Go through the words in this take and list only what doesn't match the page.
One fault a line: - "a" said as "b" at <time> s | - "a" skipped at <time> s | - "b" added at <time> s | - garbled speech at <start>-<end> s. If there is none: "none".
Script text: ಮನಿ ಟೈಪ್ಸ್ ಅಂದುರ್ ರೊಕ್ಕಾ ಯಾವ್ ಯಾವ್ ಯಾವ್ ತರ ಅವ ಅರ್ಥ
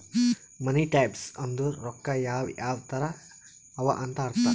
- "ಯಾವ್" skipped at 2.8 s
- "ಅಂತ್" added at 4.0 s